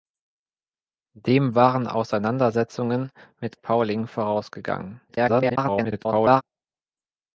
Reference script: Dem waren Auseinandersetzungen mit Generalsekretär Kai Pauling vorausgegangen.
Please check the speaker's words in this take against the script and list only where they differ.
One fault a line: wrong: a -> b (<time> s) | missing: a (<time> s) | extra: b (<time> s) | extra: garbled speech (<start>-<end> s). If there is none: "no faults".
missing: Generalsekretär Kai (3.6 s)
extra: garbled speech (5.1-6.4 s)